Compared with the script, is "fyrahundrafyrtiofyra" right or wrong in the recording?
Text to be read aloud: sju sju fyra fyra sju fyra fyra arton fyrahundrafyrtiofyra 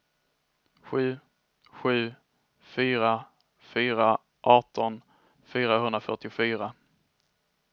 right